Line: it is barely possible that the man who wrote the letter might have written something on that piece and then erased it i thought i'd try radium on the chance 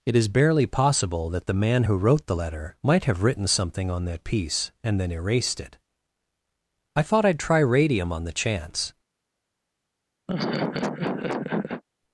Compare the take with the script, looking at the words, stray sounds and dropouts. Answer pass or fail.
fail